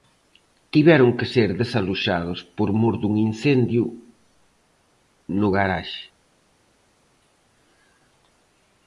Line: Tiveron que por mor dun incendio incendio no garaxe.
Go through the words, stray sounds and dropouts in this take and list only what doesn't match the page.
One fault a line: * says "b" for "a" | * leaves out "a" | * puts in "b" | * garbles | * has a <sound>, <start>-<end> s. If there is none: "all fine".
* puts in "ser desaloxados"
* leaves out "incendio"